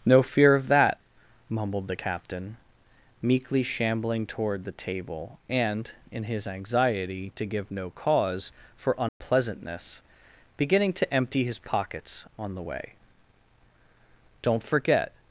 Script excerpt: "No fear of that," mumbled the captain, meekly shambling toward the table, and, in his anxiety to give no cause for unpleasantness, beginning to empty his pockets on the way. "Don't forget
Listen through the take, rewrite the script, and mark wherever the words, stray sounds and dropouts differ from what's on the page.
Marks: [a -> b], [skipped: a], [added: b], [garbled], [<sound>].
"No fear of that," mumbled the captain, meekly shambling toward the table, and, in his anxiety to give no cause for unpleasantness, [dropout] beginning to empty his pockets on the way. "Don't forget